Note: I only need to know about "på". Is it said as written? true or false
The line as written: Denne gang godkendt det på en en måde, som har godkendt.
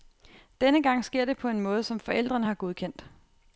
true